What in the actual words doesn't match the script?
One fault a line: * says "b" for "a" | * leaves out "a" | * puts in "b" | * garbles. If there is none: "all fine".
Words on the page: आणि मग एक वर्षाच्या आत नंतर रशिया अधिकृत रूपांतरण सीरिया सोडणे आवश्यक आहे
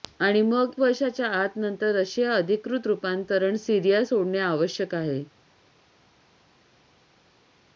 * leaves out "एक"